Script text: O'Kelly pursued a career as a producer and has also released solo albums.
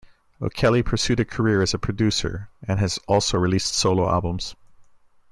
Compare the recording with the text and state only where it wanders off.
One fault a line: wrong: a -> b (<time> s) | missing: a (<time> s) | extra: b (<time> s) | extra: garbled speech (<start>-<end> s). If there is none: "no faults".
no faults